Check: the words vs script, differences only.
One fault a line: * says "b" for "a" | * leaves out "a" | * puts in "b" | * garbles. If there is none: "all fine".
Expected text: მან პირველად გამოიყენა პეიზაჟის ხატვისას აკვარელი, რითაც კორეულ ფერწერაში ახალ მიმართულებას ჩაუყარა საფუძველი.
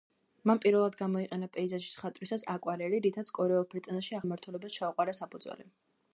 * leaves out "ახალ"